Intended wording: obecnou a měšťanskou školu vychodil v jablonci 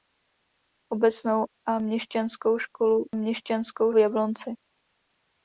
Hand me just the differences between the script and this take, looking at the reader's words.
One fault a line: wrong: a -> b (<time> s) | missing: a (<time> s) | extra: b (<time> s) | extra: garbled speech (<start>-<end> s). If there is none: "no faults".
wrong: vychodil -> měšťanskou (3.1 s)